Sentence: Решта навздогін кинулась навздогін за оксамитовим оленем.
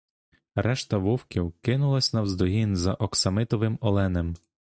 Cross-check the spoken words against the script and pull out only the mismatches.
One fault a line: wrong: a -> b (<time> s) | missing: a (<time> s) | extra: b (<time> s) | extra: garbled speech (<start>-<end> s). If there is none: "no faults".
wrong: навздогін -> вовків (1.0 s)